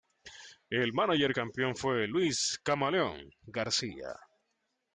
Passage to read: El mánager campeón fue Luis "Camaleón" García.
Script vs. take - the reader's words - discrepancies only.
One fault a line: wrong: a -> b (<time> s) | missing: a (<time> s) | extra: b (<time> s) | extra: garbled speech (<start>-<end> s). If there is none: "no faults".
no faults